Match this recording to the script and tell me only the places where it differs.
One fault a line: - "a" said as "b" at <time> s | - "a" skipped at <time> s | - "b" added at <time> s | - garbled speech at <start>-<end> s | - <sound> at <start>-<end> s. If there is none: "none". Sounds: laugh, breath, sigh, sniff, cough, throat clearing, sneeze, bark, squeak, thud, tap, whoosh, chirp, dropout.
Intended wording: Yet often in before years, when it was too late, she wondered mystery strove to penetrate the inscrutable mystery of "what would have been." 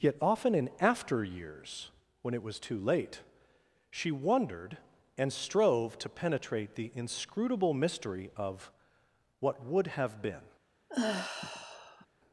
- "before" said as "after" at 0.8 s
- "mystery" said as "and" at 5.2 s
- sigh at 10.9-12.1 s